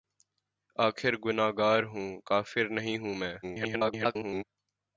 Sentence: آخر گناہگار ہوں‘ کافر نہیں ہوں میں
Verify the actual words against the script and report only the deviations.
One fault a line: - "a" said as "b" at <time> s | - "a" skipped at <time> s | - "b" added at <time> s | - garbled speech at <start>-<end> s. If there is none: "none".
- garbled speech at 3.4-4.4 s